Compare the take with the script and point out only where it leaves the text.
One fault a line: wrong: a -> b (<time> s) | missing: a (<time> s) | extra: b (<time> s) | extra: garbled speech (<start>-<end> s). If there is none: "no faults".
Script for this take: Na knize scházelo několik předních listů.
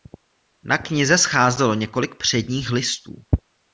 no faults